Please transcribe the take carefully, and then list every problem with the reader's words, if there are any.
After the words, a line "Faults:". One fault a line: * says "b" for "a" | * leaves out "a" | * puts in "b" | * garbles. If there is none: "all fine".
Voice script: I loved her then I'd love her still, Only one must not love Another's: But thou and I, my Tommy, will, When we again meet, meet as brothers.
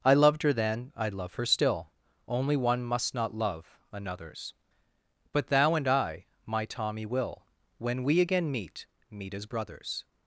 I loved her then I'd love her still, Only one must not love Another's: But thou and I, my Tommy, will, When we again meet, meet as brothers.
Faults:
all fine